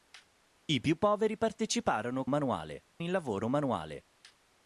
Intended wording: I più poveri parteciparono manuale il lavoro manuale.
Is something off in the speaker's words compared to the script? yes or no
no